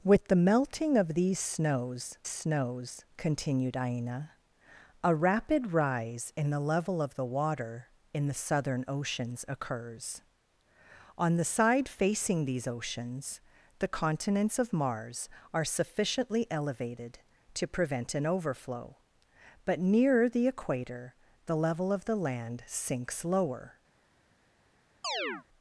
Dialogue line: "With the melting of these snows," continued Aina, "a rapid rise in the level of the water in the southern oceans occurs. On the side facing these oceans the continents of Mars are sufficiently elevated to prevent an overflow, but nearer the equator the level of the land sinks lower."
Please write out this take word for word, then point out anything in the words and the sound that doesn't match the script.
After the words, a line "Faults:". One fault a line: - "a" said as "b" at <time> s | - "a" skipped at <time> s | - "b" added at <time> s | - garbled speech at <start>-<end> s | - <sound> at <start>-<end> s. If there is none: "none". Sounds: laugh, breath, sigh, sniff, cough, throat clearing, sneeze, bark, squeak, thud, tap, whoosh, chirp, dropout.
"With the melting of these snows snows," continued Aina, "a rapid rise in the level of the water in the southern oceans occurs. On the side facing these oceans the continents of Mars are sufficiently elevated to prevent an overflow, but nearer the equator the level of the land sinks lower."
Faults:
- "snows" added at 2.3 s
- chirp at 25.0-25.4 s